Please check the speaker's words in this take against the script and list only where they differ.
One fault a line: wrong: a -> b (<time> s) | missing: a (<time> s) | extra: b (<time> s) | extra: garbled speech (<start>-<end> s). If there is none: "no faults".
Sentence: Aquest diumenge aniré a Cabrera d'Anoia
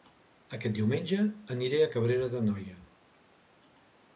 no faults